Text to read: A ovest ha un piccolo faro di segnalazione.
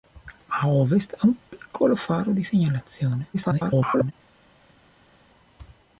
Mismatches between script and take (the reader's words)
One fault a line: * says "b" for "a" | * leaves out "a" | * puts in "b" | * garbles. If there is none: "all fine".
* garbles